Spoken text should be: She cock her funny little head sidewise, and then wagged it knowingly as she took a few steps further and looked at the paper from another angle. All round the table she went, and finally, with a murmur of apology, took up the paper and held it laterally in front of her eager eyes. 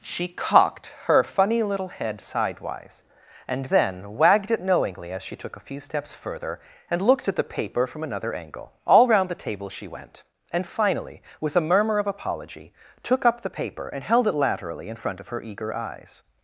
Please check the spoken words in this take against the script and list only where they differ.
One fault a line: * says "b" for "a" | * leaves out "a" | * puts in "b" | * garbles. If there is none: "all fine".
* says "cocked" for "cock"